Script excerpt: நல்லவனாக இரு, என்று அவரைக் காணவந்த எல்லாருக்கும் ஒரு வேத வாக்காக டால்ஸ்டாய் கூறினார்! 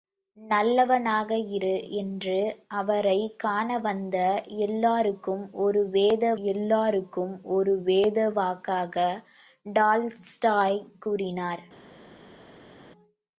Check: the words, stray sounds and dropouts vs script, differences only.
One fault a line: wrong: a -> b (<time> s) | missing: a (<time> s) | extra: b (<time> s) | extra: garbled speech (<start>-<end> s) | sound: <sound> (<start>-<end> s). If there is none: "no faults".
extra: எல்லாருக்கும் ஒரு வேத (6.5 s)